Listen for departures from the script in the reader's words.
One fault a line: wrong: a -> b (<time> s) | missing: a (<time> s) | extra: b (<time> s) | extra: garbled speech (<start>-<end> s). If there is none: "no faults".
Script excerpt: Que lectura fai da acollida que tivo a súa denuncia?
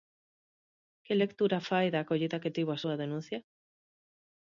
no faults